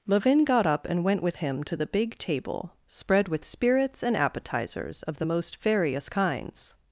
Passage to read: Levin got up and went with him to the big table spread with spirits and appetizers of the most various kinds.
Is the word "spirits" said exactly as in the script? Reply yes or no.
yes